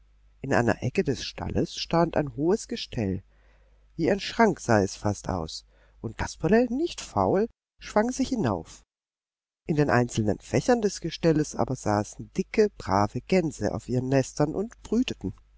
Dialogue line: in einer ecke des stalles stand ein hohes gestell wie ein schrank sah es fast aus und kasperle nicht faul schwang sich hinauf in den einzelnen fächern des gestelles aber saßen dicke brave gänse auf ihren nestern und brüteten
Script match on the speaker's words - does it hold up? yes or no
yes